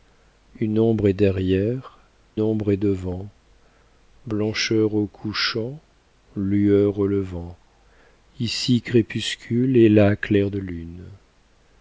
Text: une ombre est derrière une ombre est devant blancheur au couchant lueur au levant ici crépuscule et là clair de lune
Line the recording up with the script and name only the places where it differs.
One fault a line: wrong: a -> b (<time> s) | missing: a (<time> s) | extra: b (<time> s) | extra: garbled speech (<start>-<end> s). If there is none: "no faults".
missing: une (2.0 s)